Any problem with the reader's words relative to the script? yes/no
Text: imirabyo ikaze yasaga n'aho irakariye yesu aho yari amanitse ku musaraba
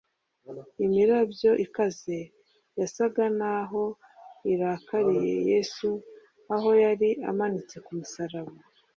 no